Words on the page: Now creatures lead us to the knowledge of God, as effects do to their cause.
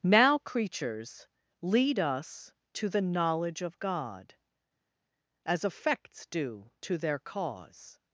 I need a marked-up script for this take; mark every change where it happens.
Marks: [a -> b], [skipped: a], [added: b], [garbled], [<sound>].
Now creatures lead us to the knowledge of God, as effects do to their cause.